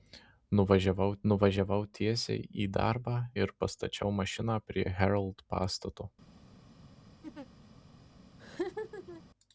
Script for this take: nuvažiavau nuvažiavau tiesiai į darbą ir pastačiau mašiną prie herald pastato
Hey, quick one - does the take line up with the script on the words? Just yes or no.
yes